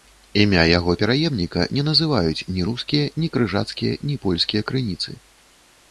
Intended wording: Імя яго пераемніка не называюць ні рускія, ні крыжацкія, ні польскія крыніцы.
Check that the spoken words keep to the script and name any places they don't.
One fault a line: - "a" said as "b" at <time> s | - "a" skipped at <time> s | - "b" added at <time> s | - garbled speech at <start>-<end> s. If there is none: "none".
none